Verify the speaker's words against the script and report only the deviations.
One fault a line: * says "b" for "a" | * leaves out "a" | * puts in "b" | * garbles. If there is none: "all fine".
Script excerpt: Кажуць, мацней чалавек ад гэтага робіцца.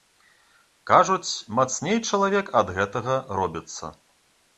all fine